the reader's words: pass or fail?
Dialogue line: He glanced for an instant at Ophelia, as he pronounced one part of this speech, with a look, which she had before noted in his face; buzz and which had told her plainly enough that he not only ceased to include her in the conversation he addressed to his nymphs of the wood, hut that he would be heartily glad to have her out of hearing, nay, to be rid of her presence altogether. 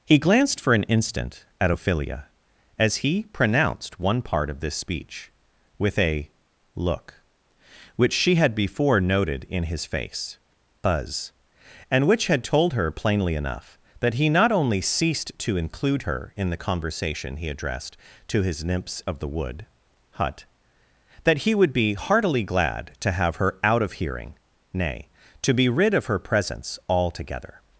pass